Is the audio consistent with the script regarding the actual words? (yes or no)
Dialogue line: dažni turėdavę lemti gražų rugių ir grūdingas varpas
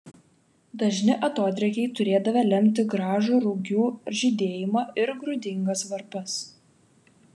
no